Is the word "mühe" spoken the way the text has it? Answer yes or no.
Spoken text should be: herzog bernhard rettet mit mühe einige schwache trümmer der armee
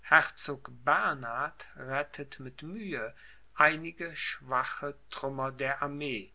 yes